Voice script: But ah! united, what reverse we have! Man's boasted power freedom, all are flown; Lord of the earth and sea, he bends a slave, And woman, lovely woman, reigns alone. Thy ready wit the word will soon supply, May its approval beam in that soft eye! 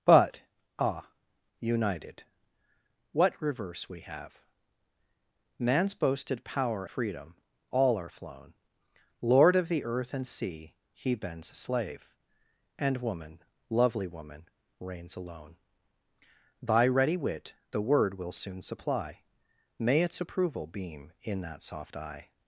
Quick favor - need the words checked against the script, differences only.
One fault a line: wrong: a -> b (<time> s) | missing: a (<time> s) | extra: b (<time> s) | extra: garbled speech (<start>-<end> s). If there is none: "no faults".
no faults